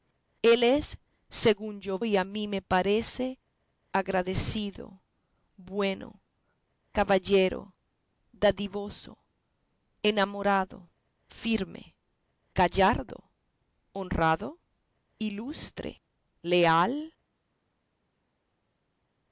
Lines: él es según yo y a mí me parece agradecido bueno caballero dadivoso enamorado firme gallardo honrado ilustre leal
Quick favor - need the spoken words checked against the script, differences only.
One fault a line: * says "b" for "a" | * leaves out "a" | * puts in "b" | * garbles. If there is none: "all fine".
all fine